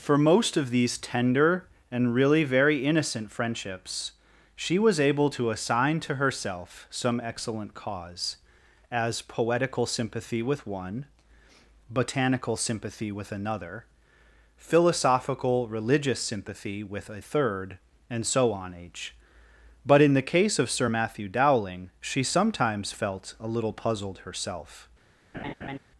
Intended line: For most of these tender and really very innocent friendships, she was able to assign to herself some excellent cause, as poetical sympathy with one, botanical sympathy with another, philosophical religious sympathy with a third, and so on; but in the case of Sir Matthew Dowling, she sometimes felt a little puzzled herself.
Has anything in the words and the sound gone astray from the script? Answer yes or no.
yes